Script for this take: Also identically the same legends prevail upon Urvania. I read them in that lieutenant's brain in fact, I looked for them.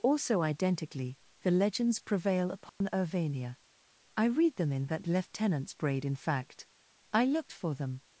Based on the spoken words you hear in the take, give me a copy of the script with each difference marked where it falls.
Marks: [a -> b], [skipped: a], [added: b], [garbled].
Also identically the [skipped: same] legends prevail upon Urvania. I read them in that lieutenant's [brain -> braid] in fact, I looked for them.